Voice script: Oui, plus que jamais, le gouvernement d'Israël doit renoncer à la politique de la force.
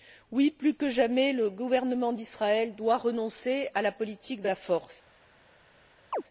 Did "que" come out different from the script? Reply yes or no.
no